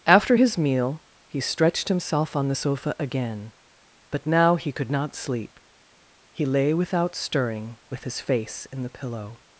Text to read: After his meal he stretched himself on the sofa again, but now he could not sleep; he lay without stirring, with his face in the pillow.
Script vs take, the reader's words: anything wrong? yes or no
no